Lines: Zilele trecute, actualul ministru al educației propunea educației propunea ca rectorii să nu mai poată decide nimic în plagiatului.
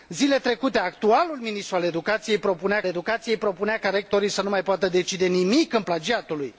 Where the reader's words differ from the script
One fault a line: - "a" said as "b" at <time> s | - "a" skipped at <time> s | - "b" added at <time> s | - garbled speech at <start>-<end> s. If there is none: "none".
none